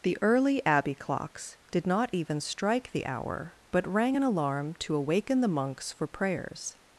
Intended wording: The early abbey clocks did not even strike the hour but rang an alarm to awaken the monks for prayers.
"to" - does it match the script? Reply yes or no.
yes